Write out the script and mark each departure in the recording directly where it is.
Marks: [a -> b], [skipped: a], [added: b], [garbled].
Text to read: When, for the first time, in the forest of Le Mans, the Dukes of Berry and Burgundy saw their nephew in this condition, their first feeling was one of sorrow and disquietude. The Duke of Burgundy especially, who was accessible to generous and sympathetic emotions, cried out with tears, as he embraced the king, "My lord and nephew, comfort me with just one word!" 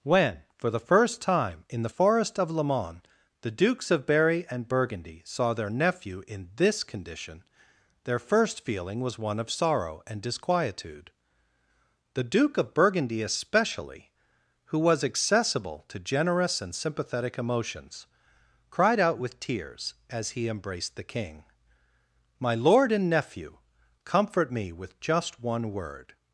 When, for the first time, in the forest of Le Mans, the Dukes of Berry and Burgundy saw their nephew in this condition, their first feeling was one of sorrow and disquietude. The Duke of Burgundy especially, who was accessible to generous and sympathetic emotions, cried out with tears, as he embraced the king, "My lord and nephew, comfort me with just one word!"